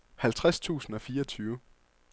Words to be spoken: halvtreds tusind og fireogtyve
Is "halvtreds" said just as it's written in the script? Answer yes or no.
yes